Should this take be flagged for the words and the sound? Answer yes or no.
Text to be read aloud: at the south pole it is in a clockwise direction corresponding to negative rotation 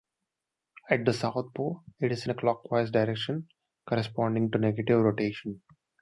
no